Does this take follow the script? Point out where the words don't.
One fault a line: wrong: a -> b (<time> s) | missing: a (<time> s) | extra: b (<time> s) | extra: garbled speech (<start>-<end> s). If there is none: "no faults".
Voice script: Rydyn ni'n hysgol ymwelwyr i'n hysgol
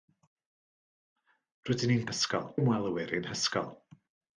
no faults